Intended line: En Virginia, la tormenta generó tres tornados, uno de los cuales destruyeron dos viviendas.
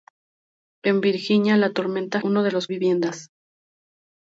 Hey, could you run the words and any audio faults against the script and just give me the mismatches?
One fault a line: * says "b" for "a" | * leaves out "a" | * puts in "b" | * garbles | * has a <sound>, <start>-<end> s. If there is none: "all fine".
* leaves out "generó tres tornados"
* leaves out "cuales destruyeron dos"